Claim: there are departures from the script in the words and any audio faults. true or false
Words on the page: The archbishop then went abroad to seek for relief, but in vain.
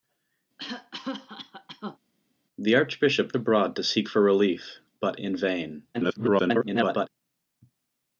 true